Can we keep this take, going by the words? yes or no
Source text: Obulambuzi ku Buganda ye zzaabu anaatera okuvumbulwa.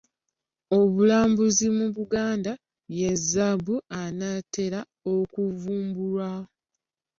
no